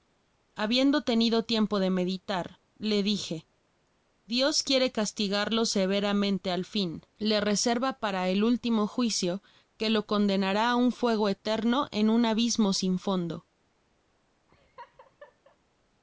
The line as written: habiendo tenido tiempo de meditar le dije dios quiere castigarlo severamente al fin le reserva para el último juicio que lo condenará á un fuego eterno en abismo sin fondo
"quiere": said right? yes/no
yes